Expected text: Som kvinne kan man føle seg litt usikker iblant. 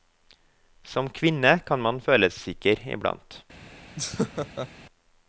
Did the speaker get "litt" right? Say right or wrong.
wrong